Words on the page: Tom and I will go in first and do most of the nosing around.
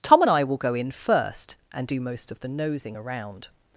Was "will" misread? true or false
false